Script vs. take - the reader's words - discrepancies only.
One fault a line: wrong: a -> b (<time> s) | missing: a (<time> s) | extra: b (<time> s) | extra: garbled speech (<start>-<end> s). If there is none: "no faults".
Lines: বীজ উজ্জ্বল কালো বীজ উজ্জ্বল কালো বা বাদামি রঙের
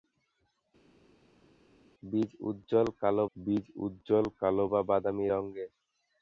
no faults